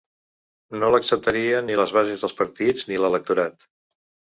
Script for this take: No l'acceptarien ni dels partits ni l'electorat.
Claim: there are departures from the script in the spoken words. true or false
true